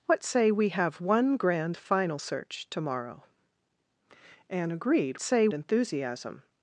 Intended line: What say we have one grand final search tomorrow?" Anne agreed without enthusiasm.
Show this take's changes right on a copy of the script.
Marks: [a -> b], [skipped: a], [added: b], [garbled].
What say we have one grand final search tomorrow?" Anne agreed [without -> say] enthusiasm.